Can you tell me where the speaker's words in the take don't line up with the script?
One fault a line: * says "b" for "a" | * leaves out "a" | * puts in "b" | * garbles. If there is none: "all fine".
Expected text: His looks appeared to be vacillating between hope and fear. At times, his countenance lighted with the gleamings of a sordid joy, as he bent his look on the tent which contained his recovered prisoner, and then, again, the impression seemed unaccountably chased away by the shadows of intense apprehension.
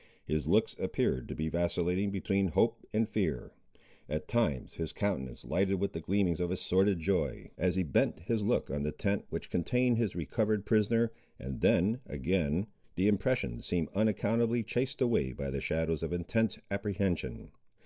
all fine